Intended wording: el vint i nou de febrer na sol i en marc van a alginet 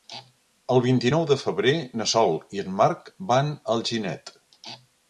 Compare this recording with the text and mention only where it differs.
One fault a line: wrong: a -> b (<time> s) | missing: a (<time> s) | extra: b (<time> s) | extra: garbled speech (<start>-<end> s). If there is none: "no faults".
no faults